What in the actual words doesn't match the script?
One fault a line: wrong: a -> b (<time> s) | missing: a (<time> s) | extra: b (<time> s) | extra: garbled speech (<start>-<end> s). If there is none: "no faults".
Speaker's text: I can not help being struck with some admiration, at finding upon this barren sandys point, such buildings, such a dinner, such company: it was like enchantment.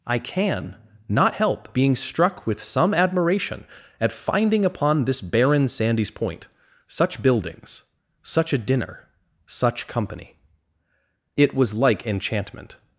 no faults